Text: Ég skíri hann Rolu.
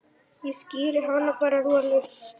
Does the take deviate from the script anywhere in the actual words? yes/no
yes